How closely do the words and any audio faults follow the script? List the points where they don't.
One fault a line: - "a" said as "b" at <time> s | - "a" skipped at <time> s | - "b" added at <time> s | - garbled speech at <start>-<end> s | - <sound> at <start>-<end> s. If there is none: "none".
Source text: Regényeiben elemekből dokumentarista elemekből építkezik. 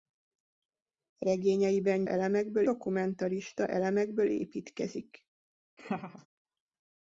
- laugh at 5.8-6.3 s